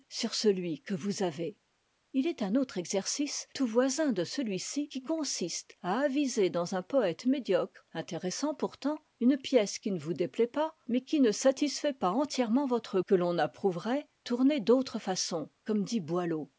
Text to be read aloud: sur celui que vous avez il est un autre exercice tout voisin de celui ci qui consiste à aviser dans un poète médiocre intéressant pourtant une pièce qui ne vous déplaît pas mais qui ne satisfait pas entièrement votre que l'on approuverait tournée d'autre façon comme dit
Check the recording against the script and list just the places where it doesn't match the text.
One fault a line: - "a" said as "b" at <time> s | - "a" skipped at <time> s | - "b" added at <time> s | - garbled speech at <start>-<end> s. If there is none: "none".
none